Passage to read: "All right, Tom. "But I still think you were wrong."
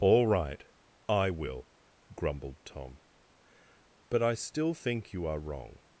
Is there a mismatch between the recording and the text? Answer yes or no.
yes